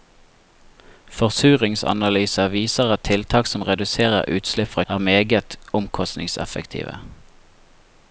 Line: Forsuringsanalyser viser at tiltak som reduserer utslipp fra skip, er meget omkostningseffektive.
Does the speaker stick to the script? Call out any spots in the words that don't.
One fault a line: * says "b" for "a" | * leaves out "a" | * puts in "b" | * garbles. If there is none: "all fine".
* leaves out "skip"